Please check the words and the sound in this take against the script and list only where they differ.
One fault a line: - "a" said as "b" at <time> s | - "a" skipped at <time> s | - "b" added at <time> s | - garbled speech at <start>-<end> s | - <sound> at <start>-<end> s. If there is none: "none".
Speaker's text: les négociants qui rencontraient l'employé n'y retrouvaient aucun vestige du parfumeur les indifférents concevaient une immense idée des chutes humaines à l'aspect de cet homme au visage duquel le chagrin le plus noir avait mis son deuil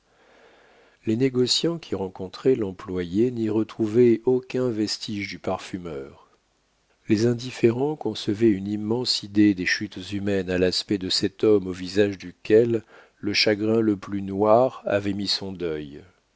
none